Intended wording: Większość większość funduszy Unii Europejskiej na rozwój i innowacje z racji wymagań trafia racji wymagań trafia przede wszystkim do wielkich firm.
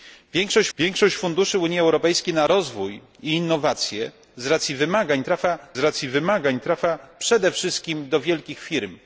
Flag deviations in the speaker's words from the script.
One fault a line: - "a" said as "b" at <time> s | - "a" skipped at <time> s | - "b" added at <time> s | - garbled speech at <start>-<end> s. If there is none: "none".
none